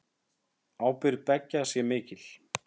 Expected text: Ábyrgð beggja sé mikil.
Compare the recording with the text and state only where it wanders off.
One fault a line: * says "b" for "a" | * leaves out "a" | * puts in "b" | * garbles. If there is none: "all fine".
all fine